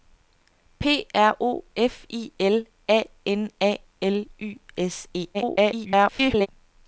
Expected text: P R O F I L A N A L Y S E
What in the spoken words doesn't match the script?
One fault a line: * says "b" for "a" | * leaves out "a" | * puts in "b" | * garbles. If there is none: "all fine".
* garbles